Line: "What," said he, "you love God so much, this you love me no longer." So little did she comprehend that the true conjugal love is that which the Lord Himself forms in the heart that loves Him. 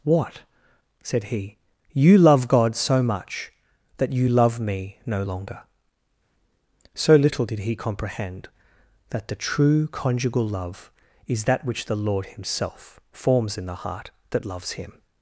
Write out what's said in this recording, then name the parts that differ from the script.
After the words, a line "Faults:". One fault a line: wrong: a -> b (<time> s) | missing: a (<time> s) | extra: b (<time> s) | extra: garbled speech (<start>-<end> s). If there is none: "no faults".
"What," said he, "you love God so much, that you love me no longer." So little did he comprehend that the true conjugal love is that which the Lord Himself forms in the heart that loves Him.
Faults:
wrong: this -> that (4.0 s)
wrong: she -> he (7.6 s)